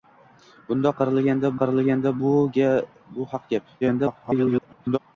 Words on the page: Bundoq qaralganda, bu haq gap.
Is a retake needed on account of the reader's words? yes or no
yes